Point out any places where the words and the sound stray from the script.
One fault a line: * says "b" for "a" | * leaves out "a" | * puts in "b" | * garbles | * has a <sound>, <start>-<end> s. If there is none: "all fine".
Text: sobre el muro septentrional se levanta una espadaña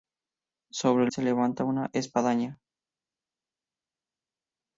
* leaves out "muro septentrional"